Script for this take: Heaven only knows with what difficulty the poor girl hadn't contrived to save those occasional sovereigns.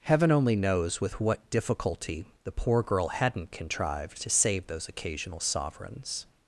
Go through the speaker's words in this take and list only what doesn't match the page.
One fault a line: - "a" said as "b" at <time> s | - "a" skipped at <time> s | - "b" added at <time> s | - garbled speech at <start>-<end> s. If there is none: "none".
none